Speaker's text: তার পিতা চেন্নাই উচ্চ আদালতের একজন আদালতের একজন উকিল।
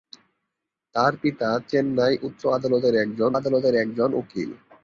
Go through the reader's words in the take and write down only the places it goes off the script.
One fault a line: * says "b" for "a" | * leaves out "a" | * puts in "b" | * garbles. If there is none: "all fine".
all fine